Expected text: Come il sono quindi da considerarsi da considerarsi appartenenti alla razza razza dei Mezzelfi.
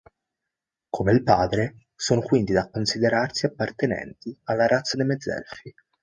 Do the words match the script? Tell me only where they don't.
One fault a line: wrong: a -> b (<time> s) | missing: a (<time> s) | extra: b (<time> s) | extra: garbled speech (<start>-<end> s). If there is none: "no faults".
extra: padre (1.2 s)
missing: da considerarsi (3.5 s)
missing: razza (5.0 s)